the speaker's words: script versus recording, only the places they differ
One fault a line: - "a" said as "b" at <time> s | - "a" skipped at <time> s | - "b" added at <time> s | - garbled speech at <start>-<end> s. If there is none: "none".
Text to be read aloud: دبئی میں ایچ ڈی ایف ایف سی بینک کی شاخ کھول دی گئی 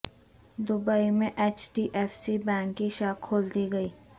- "ایف" skipped at 2.1 s